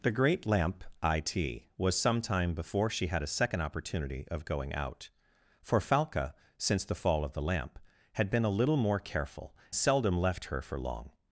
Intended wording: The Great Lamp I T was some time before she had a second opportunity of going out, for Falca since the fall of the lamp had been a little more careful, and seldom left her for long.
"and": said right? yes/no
no